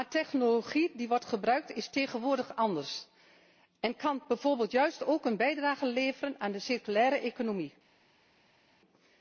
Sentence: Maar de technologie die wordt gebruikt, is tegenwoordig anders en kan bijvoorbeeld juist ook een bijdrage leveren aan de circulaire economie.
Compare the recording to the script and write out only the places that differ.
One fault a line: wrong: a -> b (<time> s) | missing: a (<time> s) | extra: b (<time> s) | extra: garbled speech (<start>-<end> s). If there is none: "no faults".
no faults